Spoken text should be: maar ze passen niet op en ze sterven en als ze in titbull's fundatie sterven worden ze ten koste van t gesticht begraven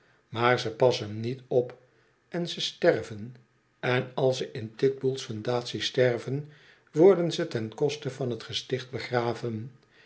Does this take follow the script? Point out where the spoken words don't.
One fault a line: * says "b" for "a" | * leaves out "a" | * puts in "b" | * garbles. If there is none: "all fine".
all fine